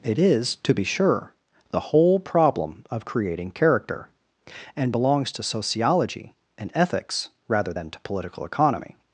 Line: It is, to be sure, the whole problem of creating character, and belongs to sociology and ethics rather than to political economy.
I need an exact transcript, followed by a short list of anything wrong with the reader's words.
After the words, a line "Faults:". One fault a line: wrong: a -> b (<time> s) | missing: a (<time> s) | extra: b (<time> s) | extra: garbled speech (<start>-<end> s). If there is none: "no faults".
It is, to be sure, the whole problem of creating character, and belongs to sociology and ethics rather than to political economy.
Faults:
no faults